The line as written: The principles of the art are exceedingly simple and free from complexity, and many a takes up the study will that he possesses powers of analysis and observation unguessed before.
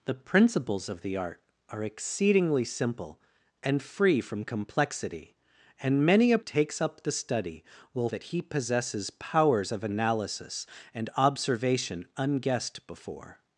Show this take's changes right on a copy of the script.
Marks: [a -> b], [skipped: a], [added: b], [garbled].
The principles of the art are exceedingly simple and free from complexity, and many a takes up the study will that he possesses powers of analysis and observation unguessed before.